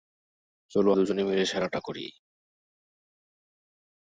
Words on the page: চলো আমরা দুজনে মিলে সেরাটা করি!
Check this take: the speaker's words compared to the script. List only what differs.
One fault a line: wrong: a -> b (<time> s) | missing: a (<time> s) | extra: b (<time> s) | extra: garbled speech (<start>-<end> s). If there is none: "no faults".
missing: আমরা (0.9 s)